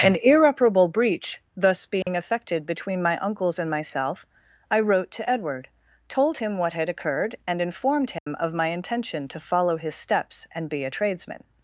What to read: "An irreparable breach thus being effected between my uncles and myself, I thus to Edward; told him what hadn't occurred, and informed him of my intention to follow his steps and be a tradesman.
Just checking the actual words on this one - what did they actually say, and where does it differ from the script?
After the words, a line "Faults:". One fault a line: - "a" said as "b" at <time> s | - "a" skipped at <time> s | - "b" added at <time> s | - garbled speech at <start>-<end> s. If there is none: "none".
"An irreparable breach thus being effected between my uncles and myself, I wrote to Edward; told him what had occurred, and informed him of my intention to follow his steps and be a tradesman.
Faults:
- "thus" said as "wrote" at 4.8 s
- "hadn't" said as "had" at 6.7 s